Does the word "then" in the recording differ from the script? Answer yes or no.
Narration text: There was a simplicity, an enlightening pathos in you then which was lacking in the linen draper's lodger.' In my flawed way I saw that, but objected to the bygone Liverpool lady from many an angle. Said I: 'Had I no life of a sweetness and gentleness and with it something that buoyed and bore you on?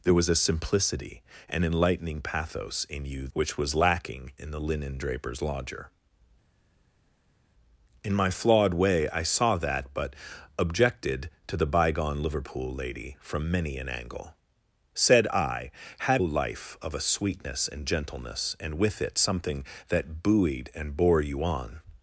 yes